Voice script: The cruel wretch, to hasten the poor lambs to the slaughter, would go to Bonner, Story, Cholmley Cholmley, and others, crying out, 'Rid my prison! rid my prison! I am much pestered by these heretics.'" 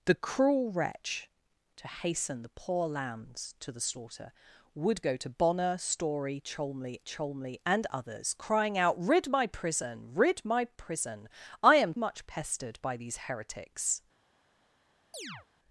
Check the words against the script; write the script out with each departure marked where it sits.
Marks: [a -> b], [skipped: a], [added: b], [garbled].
The cruel wretch, to hasten the poor lambs to the slaughter, would go to Bonner, Story, Cholmley Cholmley, and others, crying out, 'Rid my prison! rid my prison! I am much pestered by these heretics.'"